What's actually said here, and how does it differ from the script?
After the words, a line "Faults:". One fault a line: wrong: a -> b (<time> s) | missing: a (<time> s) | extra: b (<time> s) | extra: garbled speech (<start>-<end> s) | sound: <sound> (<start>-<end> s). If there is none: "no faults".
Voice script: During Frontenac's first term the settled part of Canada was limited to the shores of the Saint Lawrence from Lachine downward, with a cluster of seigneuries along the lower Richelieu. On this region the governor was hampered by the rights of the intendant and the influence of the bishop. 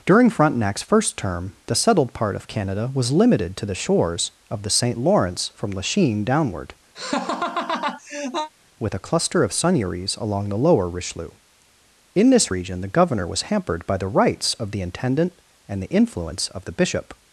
During Frontenac's first term the settled part of Canada was limited to the shores of the Saint Lawrence from Lachine downward, with a cluster of seigneuries along the lower Richelieu. In this region the governor was hampered by the rights of the intendant and the influence of the bishop.
Faults:
sound: laugh (6.9-8.5 s)
wrong: On -> In (12.1 s)